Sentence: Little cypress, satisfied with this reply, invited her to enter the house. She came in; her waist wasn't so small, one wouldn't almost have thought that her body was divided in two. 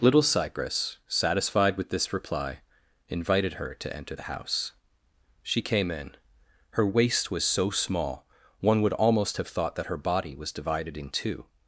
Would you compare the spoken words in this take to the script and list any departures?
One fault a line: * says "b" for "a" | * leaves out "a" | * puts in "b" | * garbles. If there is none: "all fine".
* says "was" for "wasn't"
* says "would" for "wouldn't"